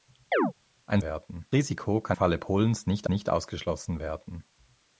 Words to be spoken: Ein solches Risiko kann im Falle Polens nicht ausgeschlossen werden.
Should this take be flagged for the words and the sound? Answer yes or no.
yes